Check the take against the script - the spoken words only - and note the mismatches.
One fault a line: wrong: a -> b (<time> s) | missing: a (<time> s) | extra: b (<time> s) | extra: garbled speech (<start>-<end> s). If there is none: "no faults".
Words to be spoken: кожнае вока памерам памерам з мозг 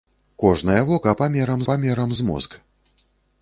no faults